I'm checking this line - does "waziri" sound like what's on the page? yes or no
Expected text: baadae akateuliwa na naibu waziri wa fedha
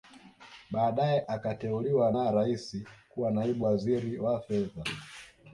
yes